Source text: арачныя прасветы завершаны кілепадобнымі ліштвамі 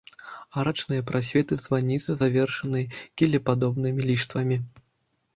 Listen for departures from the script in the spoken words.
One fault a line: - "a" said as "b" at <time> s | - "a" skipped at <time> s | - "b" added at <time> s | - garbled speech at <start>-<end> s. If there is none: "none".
- "званіцы" added at 1.6 s